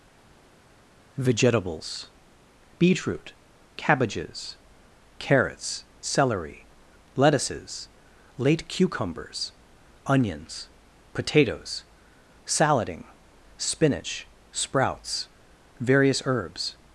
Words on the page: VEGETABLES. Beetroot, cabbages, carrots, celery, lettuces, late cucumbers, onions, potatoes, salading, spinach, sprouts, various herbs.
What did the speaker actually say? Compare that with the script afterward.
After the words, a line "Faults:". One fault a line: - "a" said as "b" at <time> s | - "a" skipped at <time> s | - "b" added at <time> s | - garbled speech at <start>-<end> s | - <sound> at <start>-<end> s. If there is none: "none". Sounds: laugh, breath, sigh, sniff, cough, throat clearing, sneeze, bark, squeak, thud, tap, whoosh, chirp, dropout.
VEGETABLES. Beetroot, cabbages, carrots, celery, lettuces, late cucumbers, onions, potatoes, salading, spinach, sprouts, various herbs.
Faults:
none